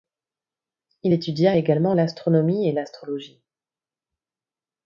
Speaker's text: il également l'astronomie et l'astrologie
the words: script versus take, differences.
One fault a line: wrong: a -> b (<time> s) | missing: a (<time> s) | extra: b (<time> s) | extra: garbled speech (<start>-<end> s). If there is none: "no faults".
extra: étudia (1.1 s)